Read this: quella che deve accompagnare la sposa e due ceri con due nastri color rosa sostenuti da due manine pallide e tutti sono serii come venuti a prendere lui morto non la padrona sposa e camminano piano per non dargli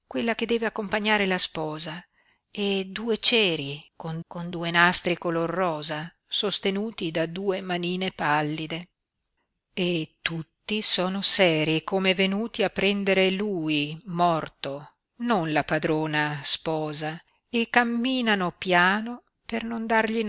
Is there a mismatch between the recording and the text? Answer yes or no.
yes